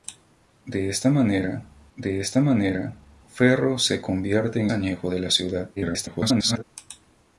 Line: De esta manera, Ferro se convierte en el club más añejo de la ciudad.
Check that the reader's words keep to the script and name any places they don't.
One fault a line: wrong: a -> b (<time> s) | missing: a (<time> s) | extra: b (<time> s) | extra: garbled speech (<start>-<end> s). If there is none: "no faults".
extra: de esta manera (2.0 s)
missing: el club más (4.7 s)
extra: garbled speech (5.8-6.6 s)